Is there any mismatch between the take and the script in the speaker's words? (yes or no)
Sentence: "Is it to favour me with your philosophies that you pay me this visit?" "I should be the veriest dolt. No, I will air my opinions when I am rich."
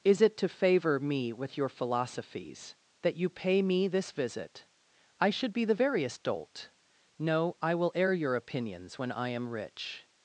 yes